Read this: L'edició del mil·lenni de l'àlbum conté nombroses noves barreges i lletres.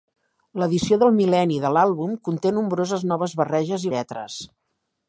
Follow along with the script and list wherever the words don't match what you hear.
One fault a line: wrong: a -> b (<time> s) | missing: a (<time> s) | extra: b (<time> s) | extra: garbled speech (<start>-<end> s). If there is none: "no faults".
no faults